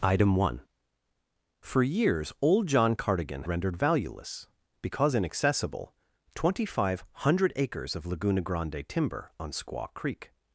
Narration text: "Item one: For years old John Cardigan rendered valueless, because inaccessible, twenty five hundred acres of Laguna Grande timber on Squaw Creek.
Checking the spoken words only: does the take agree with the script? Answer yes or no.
yes